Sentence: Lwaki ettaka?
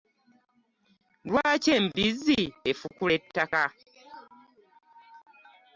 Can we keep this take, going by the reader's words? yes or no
no